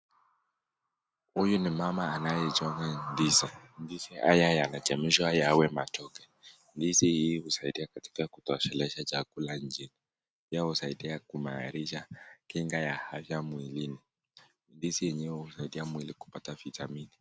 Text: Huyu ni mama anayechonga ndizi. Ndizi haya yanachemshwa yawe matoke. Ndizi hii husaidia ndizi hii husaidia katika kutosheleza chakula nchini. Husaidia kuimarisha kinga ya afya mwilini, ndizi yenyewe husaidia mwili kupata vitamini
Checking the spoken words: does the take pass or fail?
fail